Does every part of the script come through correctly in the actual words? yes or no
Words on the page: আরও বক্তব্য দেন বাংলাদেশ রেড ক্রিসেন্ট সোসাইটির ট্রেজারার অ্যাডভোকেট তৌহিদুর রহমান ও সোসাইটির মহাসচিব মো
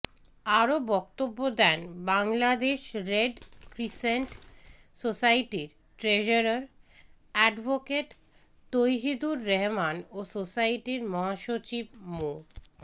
yes